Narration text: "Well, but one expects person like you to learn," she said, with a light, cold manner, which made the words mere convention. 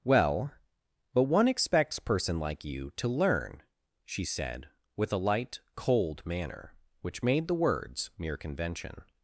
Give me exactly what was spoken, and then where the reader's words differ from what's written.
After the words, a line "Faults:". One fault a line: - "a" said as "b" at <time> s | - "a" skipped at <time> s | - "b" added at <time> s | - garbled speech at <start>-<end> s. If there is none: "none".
"Well, but one expects person like you to learn," she said, with a light, cold manner, which made the words mere convention.
Faults:
none